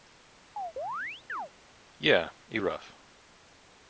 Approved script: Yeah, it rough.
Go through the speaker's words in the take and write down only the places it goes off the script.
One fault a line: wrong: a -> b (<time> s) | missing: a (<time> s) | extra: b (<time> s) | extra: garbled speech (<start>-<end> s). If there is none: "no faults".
no faults